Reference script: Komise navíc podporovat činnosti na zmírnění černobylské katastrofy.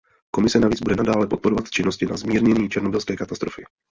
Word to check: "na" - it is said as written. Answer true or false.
true